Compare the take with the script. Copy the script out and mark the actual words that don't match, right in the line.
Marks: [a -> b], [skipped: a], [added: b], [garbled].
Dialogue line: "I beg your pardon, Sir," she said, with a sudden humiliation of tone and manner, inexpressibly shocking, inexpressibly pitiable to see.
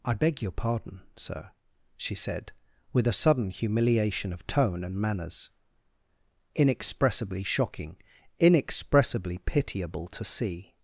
"I beg your pardon, Sir," she said, with a sudden humiliation of tone and [manner, -> manners] inexpressibly shocking, inexpressibly pitiable to see.